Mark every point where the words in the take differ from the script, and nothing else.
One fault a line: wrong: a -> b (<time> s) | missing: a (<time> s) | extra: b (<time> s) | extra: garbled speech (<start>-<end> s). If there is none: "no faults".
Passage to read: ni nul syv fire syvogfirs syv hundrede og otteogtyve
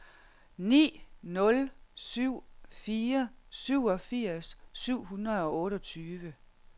no faults